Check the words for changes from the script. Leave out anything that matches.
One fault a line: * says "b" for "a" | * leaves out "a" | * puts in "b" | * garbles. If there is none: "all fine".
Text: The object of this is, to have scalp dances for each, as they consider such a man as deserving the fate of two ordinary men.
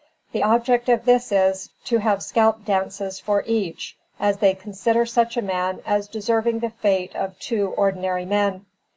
all fine